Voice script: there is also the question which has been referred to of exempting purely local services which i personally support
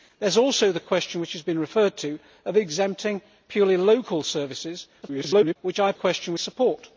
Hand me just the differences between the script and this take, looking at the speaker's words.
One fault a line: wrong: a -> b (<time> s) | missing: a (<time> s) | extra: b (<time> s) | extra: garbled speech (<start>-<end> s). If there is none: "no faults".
extra: garbled speech (5.0-5.6 s)
wrong: personally -> question (5.9 s)